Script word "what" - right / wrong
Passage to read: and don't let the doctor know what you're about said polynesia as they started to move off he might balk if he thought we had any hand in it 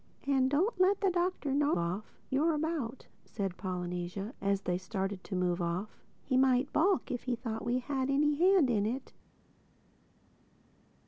wrong